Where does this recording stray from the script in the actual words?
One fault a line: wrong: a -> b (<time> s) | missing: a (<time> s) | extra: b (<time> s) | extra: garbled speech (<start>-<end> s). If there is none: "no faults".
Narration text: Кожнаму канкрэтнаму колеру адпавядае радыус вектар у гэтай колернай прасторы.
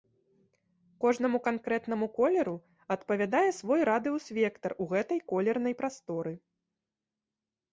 extra: свой (3.6 s)